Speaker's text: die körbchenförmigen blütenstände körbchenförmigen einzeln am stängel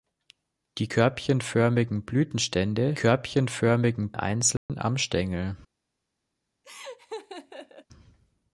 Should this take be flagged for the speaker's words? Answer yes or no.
no